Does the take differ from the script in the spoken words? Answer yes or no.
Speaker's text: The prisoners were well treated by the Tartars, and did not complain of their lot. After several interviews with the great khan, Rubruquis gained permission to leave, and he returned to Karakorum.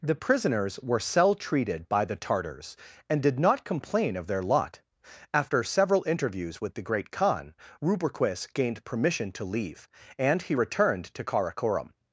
yes